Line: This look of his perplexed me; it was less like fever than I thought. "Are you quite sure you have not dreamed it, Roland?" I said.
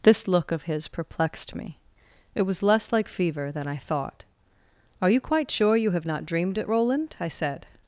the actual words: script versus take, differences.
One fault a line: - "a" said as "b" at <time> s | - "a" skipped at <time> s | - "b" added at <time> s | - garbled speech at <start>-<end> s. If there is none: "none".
none